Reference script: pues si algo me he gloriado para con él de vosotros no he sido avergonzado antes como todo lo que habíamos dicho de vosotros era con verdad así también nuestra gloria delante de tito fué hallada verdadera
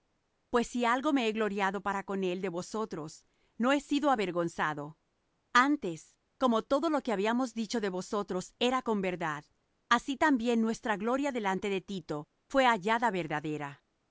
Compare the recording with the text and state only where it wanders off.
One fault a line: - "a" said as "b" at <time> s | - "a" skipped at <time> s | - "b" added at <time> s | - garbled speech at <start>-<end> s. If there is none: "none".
none